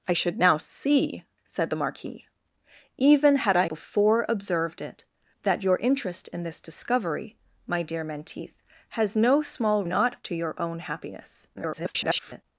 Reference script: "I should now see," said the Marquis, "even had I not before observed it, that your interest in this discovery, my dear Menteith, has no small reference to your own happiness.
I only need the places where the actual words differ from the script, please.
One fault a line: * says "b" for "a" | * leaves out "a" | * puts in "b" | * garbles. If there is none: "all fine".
* leaves out "not"
* says "not" for "reference"
* garbles